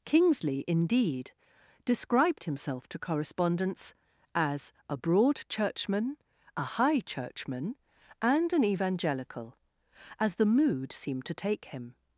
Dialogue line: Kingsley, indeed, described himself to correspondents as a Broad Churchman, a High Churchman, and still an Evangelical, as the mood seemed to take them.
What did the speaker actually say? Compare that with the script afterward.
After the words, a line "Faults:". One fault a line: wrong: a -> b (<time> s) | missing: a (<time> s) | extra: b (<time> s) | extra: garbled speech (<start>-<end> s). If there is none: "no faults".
Kingsley, indeed, described himself to correspondents as a Broad Churchman, a High Churchman, and an Evangelical, as the mood seemed to take him.
Faults:
missing: still (8.5 s)
wrong: them -> him (11.6 s)